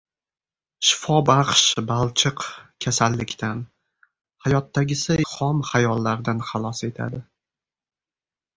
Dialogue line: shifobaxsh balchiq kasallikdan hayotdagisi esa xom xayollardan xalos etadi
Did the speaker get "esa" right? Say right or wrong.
wrong